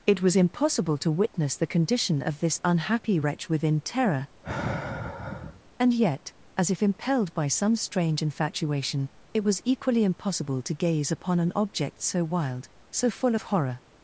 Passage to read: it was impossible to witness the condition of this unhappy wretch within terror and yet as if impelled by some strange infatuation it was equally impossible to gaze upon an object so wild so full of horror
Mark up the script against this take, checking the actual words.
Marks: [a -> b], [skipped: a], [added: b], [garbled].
it was impossible to witness the condition of this unhappy wretch within terror and yet as if impelled by some strange infatuation it was equally impossible to gaze upon an object so wild so full of horror